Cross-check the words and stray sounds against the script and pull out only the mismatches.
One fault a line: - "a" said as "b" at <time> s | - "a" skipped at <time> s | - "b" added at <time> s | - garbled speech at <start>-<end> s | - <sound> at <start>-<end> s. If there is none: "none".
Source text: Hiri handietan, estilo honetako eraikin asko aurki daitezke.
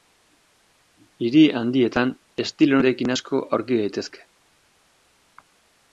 - "honetako" skipped at 2.8 s